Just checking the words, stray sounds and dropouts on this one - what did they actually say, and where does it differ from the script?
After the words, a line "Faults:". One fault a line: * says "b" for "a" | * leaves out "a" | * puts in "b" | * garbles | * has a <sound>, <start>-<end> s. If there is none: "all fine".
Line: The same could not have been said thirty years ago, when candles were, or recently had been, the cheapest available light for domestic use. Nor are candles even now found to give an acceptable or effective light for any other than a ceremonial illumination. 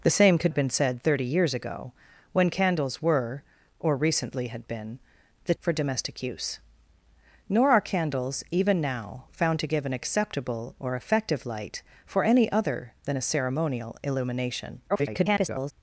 The same could have been said thirty years ago, when candles were, or recently had been, the for domestic use. Nor are candles even now found to give an acceptable or effective light for any other than a ceremonial illumination. [garbled]
Faults:
* leaves out "not"
* leaves out "cheapest available light"
* garbles